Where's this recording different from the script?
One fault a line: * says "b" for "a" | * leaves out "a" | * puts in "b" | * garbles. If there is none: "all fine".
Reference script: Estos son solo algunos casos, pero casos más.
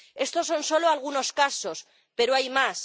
* says "hay" for "casos"